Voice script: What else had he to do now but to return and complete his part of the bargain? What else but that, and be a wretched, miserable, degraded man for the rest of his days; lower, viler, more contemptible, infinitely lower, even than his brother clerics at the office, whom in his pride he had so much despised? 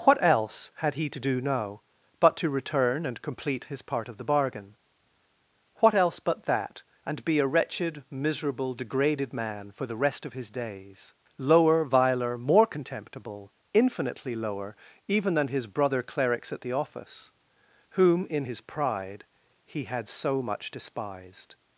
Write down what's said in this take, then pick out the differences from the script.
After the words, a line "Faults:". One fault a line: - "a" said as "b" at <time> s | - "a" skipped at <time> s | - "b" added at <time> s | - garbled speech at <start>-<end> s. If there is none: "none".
What else had he to do now but to return and complete his part of the bargain? What else but that, and be a wretched, miserable, degraded man for the rest of his days; lower, viler, more contemptible, infinitely lower, even than his brother clerics at the office, whom in his pride he had so much despised?
Faults:
none